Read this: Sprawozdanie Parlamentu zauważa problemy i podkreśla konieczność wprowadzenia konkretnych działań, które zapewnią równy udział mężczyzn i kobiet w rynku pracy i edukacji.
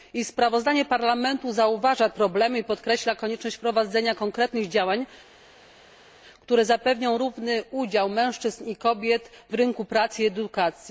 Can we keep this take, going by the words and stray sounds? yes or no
yes